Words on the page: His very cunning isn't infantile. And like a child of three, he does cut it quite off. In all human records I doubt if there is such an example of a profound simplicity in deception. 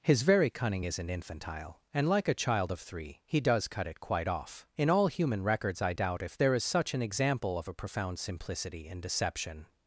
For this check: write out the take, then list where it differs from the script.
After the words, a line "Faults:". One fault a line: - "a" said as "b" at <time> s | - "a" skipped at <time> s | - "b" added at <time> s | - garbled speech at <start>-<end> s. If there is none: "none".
His very cunning isn't infantile. And like a child of three, he does cut it quite off. In all human records I doubt if there is such an example of a profound simplicity in deception.
Faults:
none